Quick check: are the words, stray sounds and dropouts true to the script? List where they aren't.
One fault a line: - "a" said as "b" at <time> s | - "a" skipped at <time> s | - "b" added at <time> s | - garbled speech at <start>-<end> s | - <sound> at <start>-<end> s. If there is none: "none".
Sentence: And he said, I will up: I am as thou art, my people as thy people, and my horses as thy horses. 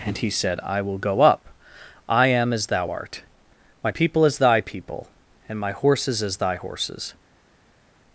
- "go" added at 1.0 s